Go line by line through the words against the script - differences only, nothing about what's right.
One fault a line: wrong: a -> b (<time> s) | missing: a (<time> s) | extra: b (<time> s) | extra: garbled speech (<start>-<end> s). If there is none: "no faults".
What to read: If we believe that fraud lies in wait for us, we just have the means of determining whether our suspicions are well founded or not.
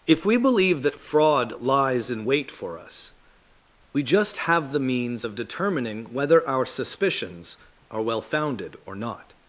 no faults